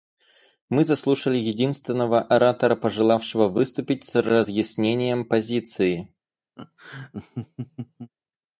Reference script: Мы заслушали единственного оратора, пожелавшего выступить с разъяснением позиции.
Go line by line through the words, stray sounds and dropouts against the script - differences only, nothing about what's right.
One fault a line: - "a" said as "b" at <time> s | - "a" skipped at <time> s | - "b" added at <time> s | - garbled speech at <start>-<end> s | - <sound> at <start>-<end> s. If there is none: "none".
- laugh at 6.6-8.1 s